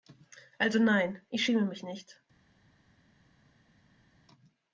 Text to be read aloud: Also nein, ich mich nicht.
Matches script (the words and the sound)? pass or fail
fail